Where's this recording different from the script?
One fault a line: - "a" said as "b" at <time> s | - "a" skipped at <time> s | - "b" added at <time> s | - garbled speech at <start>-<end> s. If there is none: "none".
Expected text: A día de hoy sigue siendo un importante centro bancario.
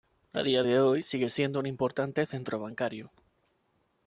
none